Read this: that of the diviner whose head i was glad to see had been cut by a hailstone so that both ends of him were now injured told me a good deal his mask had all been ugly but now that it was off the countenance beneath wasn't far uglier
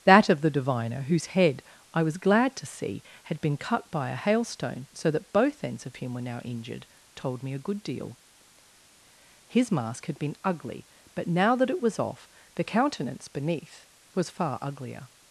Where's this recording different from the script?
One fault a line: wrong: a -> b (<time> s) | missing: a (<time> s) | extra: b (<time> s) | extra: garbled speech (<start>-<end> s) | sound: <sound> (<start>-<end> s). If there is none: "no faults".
missing: all (10.2 s)
wrong: wasn't -> was (14.1 s)